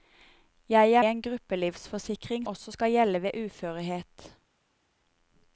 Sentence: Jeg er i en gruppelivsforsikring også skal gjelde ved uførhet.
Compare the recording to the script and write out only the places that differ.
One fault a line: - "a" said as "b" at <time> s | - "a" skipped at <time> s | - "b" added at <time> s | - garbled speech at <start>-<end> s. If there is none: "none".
none